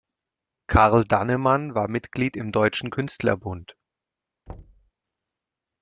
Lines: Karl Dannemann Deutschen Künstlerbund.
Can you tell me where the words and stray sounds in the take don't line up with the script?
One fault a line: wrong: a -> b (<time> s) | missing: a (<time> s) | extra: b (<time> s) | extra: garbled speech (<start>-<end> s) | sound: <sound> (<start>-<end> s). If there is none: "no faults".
extra: war Mitglied im (1.8 s)
sound: thud (4.5-4.9 s)